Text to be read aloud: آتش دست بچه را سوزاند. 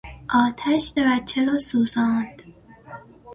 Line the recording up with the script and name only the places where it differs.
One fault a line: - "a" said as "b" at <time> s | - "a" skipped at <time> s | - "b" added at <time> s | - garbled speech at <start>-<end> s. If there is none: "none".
- "دست" skipped at 0.9 s